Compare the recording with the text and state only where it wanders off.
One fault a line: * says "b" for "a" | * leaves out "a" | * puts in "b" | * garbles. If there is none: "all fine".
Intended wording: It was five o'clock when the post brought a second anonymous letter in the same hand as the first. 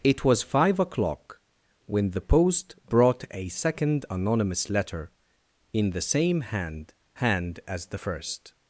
* puts in "hand"